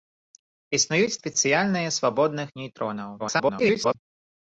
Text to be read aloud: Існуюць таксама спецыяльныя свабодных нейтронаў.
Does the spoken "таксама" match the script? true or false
false